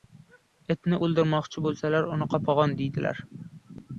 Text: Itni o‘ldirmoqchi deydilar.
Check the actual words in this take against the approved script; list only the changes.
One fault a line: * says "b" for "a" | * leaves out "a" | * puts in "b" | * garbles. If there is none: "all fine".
* puts in "bo‘lsalar uni qopag‘on"